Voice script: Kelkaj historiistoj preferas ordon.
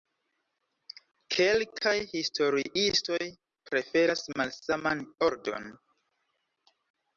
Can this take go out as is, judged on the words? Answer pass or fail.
fail